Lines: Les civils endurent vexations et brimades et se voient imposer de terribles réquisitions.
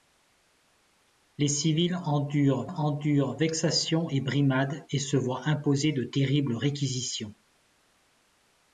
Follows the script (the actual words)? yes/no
no